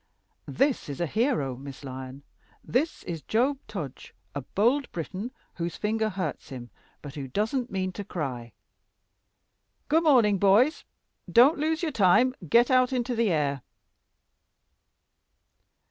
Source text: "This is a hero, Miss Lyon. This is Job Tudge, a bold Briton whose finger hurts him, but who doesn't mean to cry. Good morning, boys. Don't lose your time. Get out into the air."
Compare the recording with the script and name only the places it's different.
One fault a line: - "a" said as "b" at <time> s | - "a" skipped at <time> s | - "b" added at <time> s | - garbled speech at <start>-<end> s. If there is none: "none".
none